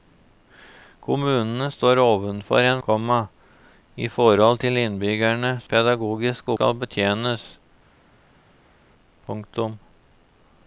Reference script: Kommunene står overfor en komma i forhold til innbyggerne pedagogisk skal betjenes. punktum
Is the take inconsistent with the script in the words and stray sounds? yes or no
no